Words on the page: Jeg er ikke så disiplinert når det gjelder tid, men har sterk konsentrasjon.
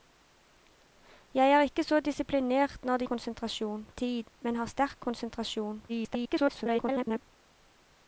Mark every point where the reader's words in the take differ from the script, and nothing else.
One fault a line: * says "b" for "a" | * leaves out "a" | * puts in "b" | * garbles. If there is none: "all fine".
* says "konsentrasjon" for "gjelder"
* garbles